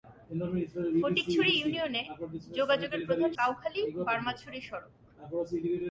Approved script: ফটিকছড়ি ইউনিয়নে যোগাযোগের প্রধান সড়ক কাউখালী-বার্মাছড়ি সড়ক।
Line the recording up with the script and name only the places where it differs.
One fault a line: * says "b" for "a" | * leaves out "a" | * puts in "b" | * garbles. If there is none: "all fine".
* leaves out "সড়ক"